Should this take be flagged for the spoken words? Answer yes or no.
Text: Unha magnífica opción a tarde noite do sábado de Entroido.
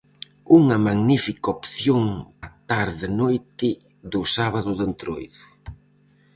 no